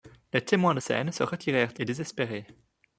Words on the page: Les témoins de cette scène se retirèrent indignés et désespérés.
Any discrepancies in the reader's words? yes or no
yes